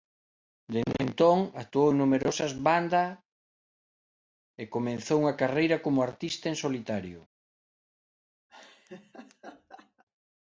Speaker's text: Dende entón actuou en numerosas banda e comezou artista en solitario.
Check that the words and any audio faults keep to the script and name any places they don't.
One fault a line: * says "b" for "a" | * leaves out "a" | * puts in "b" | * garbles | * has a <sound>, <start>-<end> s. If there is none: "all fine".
* puts in "unha carreira como"
* has a laugh, 8.5-10.0 s